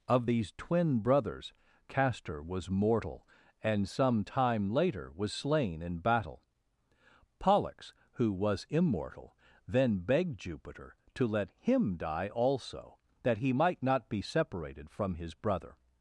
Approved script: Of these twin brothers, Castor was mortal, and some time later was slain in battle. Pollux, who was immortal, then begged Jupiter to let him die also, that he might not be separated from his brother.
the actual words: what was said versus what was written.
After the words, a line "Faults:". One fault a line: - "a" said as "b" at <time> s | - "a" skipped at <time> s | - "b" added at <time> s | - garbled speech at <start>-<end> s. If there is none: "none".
Of these twin brothers, Castor was mortal, and some time later was slain in battle. Pollux, who was immortal, then begged Jupiter to let him die also, that he might not be separated from his brother.
Faults:
none